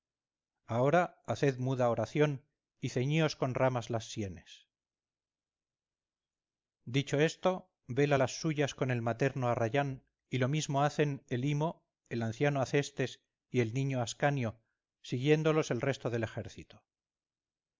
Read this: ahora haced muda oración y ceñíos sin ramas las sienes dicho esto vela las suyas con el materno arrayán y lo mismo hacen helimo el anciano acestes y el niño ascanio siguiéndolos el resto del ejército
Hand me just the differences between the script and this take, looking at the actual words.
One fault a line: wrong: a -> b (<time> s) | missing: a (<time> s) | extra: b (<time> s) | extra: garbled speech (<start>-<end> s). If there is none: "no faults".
wrong: sin -> con (3.4 s)